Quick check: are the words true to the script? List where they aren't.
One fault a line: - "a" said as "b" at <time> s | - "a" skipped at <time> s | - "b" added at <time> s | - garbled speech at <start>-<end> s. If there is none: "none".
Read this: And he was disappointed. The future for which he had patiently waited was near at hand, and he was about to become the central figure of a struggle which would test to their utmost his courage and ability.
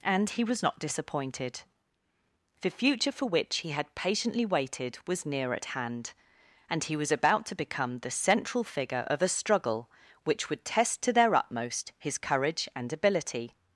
- "not" added at 0.6 s